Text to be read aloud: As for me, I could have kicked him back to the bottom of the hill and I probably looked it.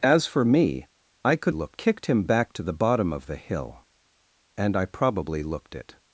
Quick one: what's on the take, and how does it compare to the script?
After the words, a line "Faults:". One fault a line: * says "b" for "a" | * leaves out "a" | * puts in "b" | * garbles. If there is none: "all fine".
As for me, I could looked kicked him back to the bottom of the hill and I probably looked it.
Faults:
* says "looked" for "have"